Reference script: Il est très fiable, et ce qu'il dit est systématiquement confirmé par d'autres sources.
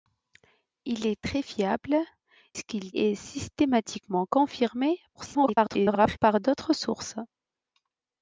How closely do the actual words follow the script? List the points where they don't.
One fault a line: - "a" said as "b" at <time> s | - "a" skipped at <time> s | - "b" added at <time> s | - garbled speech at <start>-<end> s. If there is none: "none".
- "et" skipped at 1.9 s
- "dit" skipped at 2.9 s
- garbled speech at 5.2-6.2 s